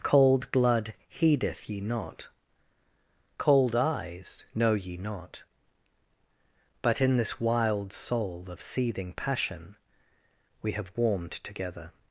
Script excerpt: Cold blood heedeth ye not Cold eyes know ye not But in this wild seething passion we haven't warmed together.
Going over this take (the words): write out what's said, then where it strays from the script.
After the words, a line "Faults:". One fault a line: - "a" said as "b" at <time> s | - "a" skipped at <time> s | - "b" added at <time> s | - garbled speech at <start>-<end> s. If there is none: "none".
Cold blood heedeth ye not Cold eyes know ye not But in this wild soul of seething passion we have warmed together.
Faults:
- "soul of" added at 7.9 s
- "haven't" said as "have" at 10.7 s